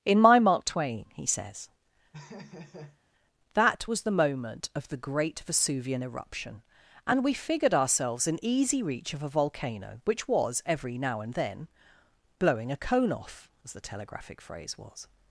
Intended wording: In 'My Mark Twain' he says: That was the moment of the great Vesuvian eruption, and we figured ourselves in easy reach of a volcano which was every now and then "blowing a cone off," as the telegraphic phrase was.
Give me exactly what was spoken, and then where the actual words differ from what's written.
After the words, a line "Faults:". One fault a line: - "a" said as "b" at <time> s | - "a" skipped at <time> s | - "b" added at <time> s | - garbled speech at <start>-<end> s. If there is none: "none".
In 'My Mark Twain' he says: That was the moment of the great Vesuvian eruption, and we figured ourselves in easy reach of a volcano which was every now and then "blowing a cone off," as the telegraphic phrase was.
Faults:
none